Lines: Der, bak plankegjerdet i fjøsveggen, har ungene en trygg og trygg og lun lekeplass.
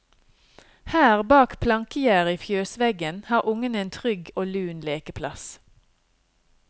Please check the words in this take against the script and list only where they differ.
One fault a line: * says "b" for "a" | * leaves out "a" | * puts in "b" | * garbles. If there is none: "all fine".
* says "Her" for "Der"
* leaves out "trygg og"